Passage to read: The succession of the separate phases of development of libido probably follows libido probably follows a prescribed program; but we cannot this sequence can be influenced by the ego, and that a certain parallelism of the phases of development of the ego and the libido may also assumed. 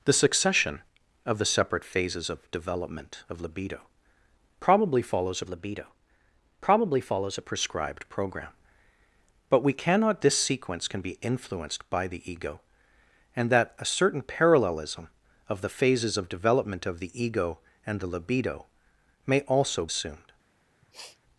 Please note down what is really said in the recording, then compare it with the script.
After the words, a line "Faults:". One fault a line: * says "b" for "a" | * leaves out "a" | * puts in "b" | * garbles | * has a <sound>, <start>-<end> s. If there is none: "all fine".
The succession of the separate phases of development of libido probably follows libido probably follows a prescribed program; but we cannot this sequence can be influenced by the ego, and that a certain parallelism of the phases of development of the ego and the libido may also assumed.
Faults:
* has a sniff, 20.8-21.2 s